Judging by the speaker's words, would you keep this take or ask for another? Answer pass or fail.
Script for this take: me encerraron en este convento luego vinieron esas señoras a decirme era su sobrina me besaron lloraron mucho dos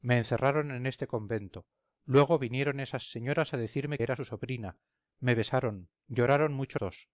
pass